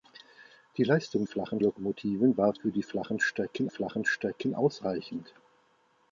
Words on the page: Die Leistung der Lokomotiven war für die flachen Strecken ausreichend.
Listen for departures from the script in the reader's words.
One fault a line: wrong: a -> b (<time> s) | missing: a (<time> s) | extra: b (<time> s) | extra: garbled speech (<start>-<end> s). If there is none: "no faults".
wrong: der -> flachen (1.2 s)
extra: flachen Strecken (3.7 s)